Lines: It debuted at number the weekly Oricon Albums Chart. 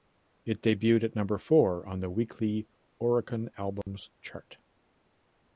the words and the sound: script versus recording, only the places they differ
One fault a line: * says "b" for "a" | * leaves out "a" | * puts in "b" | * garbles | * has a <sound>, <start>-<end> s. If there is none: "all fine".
* puts in "four on"
* has a dropout, 3.8-3.9 s